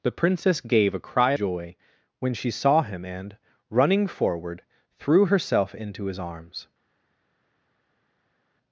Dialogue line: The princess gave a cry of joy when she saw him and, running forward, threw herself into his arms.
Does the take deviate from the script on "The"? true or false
false